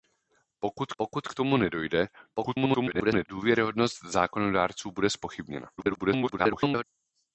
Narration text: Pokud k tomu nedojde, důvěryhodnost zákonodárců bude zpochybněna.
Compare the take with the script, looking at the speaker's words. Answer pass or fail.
fail